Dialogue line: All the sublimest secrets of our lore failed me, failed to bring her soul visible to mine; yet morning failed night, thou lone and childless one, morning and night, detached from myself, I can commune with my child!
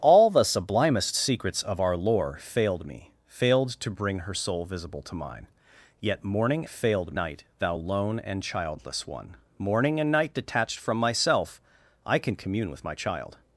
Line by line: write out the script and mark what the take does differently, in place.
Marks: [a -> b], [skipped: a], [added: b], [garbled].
All the sublimest secrets of our lore failed me, failed to bring her soul visible to mine; yet morning failed night, thou lone and childless one, morning and night, detached from myself, I can commune with my child!